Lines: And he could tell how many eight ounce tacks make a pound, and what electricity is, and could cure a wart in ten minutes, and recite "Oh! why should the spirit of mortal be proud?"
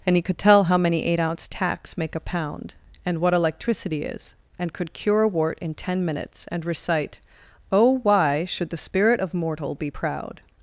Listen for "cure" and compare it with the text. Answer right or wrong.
right